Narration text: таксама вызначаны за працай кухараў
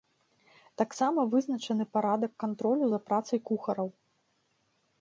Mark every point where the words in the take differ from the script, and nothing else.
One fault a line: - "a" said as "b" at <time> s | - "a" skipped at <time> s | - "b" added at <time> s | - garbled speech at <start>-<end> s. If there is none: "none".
- "парадак кантролю" added at 2.0 s